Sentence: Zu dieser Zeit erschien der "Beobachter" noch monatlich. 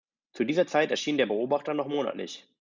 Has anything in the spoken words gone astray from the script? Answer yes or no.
no